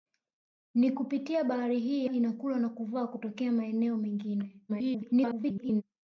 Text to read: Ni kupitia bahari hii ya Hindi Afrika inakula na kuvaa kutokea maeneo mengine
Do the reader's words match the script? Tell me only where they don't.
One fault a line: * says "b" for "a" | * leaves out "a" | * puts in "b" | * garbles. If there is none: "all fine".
* leaves out "ya Hindi Afrika"
* garbles